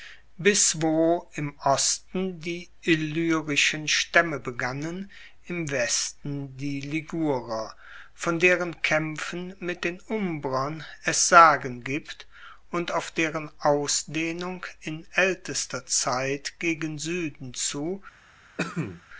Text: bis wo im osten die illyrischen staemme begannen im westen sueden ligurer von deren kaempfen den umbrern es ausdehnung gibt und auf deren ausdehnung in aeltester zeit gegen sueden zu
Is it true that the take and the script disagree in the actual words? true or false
true